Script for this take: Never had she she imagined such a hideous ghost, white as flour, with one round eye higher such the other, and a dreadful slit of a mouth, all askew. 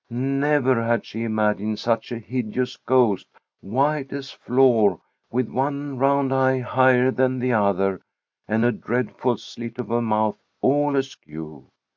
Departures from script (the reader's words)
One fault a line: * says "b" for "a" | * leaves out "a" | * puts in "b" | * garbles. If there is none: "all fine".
* leaves out "she"
* says "than" for "such"